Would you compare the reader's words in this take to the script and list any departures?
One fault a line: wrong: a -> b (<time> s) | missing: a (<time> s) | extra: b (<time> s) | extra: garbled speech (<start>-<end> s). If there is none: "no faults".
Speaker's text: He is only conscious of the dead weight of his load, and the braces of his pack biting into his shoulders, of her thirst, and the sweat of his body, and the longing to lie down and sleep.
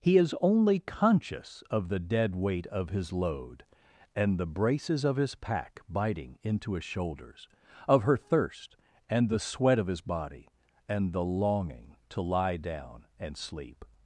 no faults